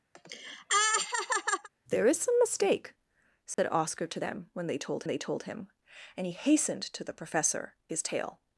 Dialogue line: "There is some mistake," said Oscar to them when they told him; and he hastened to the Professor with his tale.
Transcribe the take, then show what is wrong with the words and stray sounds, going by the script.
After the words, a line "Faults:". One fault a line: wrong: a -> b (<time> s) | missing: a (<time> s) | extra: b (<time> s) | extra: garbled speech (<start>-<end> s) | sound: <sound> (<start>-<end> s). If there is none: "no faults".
"There is some mistake," said Oscar to them when they told they told him; and he hastened to the Professor his tale.
Faults:
sound: laugh (0.2-1.7 s)
sound: dropout (3.5-3.6 s)
extra: they told (5.1 s)
missing: with (7.7 s)